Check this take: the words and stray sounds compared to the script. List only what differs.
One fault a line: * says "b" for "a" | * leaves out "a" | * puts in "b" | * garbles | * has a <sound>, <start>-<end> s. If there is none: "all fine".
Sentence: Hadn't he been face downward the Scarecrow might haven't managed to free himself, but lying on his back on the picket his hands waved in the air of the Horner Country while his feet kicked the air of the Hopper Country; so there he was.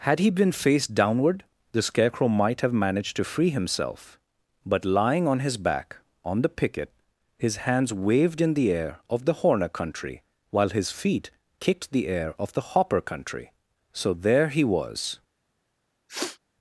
* says "Had" for "Hadn't"
* says "have" for "haven't"
* has a sniff, 16.1-16.4 s